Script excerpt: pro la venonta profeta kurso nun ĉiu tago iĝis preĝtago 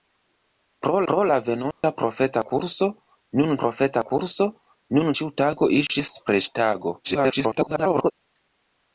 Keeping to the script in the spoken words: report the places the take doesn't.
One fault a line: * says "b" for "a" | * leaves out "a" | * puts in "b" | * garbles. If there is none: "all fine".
* puts in "pro"
* puts in "profeta kurso nun"
* garbles